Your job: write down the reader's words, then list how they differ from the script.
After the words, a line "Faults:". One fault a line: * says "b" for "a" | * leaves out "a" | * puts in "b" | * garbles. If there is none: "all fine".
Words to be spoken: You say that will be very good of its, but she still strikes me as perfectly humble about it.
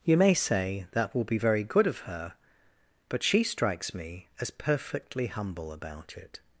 You may say that will be very good of her, but she strikes me as perfectly humble about it.
Faults:
* puts in "may"
* says "her" for "its"
* leaves out "still"